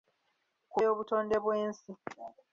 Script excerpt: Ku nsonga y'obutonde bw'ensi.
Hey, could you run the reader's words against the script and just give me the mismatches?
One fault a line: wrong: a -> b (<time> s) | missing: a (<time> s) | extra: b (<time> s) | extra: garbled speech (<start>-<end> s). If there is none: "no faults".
missing: nsonga (0.8 s)